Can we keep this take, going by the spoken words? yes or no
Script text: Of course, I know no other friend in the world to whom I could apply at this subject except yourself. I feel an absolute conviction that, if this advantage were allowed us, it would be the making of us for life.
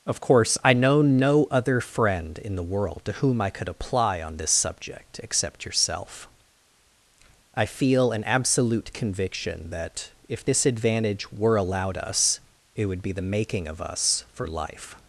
no